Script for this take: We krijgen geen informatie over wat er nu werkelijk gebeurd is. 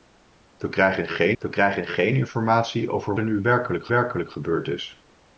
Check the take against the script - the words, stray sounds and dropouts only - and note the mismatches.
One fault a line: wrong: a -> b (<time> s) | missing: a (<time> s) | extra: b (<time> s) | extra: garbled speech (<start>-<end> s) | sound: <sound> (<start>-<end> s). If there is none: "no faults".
extra: we krijgen geen (1.4 s)
missing: wat (3.2 s)
extra: werkelijk (3.9 s)